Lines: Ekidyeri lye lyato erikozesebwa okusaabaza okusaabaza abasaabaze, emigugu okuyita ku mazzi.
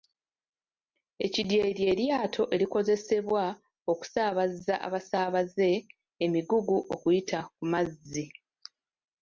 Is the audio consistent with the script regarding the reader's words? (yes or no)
no